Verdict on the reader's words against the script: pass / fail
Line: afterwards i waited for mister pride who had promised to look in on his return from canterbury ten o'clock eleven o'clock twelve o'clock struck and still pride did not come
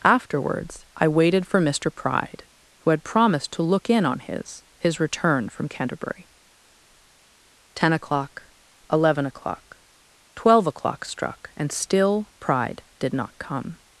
fail